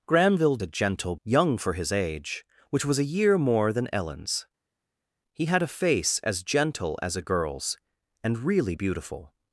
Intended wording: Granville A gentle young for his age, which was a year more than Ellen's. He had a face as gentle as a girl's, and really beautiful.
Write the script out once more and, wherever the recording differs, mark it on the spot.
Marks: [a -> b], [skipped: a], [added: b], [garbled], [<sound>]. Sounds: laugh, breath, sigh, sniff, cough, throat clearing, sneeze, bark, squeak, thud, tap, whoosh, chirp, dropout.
Granville A gentle young for his age, which was a year more than Ellen's. He had a face as gentle as a girl's, and really beautiful.